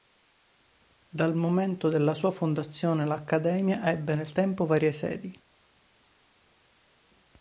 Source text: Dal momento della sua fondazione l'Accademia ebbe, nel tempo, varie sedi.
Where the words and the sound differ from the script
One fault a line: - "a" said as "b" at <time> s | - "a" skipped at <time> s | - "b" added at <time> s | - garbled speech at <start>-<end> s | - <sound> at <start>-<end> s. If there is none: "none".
none